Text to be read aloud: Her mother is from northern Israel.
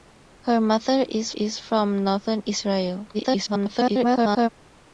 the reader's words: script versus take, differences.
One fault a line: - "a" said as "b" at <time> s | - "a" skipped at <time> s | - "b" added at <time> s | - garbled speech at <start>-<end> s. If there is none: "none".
- "is" added at 1.3 s
- garbled speech at 3.1-4.5 s